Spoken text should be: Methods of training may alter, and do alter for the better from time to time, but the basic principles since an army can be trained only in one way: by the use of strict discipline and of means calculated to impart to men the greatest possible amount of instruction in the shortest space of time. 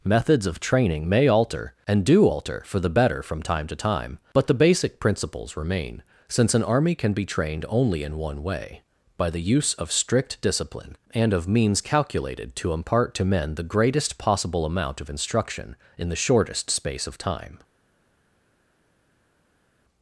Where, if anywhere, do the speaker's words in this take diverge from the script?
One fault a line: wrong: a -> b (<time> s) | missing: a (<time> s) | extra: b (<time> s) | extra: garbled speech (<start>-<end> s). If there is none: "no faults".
extra: remain (5.6 s)